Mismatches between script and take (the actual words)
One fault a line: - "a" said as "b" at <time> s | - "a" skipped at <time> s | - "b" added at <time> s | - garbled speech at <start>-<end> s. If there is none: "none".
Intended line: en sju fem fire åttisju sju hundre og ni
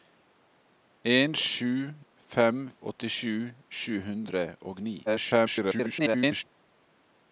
- "fire" skipped at 2.6 s
- garbled speech at 5.1-6.4 s